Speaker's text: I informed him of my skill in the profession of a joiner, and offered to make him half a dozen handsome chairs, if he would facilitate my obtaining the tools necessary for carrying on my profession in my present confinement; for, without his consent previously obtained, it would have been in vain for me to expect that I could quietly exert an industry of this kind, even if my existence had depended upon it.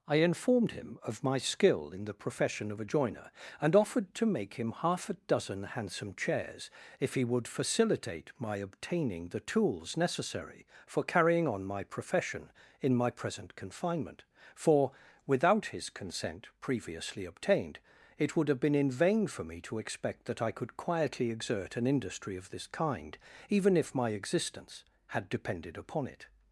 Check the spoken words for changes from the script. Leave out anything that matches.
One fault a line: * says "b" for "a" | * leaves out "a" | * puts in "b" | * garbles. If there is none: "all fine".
all fine